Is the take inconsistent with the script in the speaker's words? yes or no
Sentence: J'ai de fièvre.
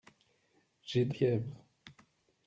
no